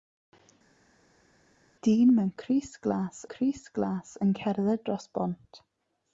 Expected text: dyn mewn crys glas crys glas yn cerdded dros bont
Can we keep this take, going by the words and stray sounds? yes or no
yes